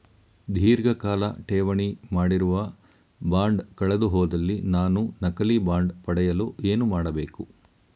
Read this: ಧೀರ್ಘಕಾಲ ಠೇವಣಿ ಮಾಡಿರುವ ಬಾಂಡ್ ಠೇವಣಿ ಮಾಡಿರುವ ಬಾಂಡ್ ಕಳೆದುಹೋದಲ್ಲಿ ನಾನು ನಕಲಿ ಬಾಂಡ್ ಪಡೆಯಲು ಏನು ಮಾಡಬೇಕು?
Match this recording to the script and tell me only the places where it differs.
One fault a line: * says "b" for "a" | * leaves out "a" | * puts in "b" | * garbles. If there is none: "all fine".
* leaves out "ಠೇವಣಿ ಮಾಡಿರುವ ಬಾಂಡ್"